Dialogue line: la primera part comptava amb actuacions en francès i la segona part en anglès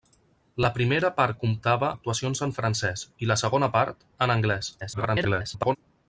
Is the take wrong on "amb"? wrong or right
wrong